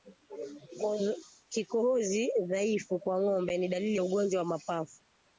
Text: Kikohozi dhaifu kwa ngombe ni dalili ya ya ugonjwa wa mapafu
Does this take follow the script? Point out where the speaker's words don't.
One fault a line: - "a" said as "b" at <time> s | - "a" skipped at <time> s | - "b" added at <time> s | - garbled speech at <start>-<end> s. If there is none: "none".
- "ya" skipped at 4.0 s